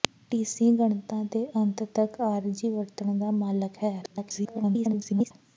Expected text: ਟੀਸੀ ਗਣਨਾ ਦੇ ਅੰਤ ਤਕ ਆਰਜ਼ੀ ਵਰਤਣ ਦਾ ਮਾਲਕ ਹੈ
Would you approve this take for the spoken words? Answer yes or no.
no